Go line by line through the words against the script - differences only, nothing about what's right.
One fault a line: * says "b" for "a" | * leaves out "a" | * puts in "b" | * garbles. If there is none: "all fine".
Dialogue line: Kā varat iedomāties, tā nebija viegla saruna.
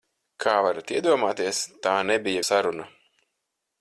* leaves out "viegla"